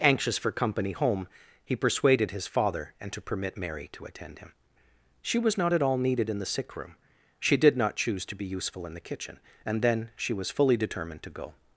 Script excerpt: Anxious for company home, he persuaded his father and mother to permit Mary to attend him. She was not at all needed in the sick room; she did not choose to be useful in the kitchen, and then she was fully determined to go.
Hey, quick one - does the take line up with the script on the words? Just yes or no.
no